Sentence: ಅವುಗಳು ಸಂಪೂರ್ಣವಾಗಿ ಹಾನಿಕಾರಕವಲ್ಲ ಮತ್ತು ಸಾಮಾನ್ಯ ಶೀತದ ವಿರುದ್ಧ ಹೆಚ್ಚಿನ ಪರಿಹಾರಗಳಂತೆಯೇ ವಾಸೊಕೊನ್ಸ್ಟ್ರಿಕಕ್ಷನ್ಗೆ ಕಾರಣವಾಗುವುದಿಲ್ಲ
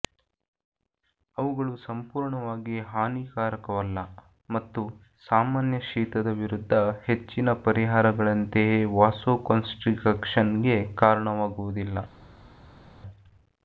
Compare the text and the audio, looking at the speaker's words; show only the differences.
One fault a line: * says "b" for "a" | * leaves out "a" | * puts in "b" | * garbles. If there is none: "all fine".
all fine